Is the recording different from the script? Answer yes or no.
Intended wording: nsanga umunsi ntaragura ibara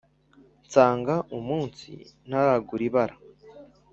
no